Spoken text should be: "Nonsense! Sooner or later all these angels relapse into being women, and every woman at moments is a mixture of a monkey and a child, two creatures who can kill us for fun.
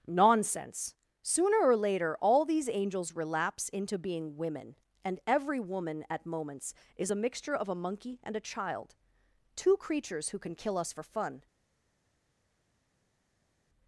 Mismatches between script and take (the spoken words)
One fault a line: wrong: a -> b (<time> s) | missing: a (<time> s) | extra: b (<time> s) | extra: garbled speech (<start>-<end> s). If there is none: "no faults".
no faults